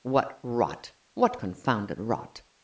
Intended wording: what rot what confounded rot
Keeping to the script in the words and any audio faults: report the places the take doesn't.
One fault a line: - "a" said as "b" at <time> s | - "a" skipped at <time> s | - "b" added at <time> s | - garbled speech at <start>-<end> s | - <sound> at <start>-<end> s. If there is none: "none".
none